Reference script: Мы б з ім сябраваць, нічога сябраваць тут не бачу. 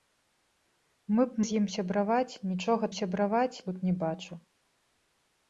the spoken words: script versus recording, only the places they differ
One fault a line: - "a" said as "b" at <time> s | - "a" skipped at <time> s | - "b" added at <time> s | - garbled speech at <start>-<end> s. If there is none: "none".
none